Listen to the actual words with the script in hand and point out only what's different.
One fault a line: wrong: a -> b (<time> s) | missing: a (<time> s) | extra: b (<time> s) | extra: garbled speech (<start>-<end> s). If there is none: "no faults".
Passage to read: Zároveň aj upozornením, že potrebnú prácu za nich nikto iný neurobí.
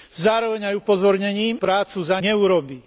missing: že potrebnú (1.6 s)
missing: nich nikto iný (2.2 s)